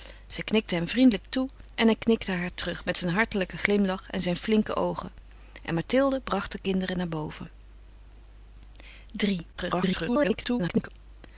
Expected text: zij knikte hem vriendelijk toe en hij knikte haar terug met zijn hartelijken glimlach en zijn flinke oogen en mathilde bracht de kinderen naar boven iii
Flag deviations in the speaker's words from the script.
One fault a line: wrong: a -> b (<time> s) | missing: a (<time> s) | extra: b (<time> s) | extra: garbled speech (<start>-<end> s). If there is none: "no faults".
extra: garbled speech (9.5-10.9 s)